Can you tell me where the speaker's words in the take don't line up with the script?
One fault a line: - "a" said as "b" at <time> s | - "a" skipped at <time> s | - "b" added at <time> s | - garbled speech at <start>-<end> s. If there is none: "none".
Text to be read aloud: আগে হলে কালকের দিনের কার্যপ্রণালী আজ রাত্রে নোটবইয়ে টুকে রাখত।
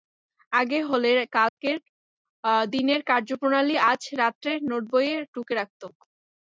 none